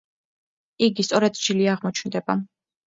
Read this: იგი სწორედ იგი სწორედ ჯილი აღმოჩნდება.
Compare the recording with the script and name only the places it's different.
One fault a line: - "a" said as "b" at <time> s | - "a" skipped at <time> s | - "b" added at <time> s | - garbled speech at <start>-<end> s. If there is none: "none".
- "იგი სწორედ" skipped at 1.4 s